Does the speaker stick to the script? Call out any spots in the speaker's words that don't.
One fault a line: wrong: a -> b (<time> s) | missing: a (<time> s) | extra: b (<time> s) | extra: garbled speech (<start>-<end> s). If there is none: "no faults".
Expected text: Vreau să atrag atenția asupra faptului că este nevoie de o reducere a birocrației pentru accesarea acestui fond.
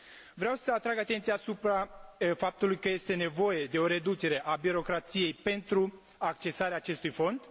no faults